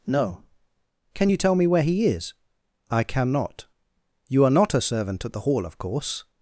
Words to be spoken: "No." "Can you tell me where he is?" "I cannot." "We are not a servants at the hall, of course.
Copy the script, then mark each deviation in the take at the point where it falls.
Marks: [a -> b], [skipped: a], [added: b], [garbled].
"No." "Can you tell me where he is?" "I cannot." ["We -> You] are not a [servants -> servant] at the hall, of course.